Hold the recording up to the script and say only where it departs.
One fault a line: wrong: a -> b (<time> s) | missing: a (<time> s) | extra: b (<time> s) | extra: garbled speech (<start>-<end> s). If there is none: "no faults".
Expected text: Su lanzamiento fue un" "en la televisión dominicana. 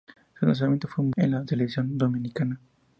no faults